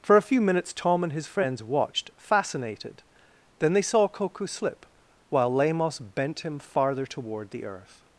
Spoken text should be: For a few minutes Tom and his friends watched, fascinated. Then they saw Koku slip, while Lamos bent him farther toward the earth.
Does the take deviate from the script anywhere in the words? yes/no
no